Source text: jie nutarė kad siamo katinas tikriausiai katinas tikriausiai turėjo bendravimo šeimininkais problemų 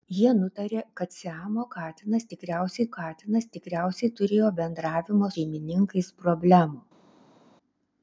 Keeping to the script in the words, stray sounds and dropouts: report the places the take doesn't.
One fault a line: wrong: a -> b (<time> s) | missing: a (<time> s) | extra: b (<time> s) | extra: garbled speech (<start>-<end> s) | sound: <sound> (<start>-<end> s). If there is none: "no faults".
no faults